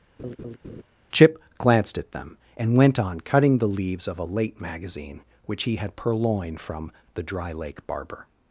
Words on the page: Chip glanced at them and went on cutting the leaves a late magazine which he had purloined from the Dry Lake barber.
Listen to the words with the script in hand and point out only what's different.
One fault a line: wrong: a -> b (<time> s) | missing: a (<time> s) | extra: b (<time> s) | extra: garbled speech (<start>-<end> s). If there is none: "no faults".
extra: of (4.1 s)